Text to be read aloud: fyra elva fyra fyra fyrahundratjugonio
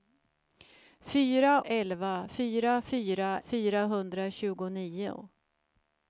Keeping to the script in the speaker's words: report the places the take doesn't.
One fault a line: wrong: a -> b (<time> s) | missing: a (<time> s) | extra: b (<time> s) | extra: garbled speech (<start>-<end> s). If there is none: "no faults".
no faults